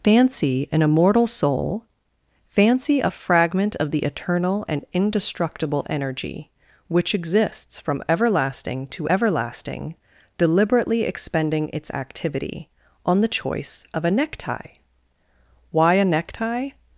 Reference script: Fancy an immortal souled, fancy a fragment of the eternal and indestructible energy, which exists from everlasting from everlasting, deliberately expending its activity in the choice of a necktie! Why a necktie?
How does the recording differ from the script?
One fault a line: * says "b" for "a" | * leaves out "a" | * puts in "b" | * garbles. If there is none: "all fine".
* says "soul" for "souled"
* says "to" for "from"
* says "on" for "in"